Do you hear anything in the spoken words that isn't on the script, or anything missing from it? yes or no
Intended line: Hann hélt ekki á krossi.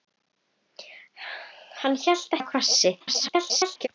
yes